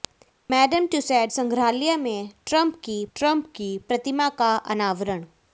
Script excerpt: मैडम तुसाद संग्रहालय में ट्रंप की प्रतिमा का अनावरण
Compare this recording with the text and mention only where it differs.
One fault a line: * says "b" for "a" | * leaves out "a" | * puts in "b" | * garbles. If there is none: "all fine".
* puts in "ट्रंप की"